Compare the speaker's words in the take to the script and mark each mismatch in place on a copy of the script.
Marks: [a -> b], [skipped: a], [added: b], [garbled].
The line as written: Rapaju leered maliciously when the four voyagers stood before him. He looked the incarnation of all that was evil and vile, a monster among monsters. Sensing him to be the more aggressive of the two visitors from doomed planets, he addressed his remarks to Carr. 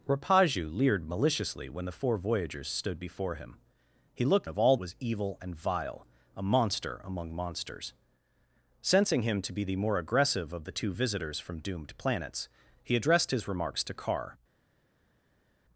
Rapaju leered maliciously when the four voyagers stood before him. He looked [skipped: the incarnation] of all [skipped: that] was evil and vile, a monster among monsters. Sensing him to be the more aggressive of the two visitors from doomed planets, he addressed his remarks to Carr.